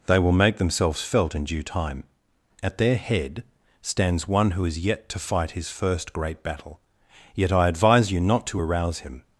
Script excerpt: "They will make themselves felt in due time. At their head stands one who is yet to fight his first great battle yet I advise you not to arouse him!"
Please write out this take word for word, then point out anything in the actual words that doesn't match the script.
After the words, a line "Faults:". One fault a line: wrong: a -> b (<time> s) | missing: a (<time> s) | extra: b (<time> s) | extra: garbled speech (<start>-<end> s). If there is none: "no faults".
"They will make themselves felt in due time. At their head stands one who is yet to fight his first great battle yet I advise you not to arouse him!"
Faults:
no faults